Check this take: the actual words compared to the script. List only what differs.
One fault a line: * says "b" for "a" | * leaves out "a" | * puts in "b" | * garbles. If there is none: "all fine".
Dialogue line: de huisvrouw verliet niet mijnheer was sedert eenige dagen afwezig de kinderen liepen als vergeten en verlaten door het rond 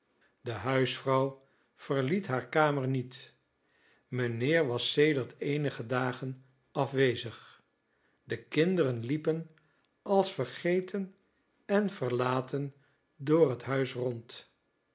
* puts in "haar kamer"
* puts in "huis"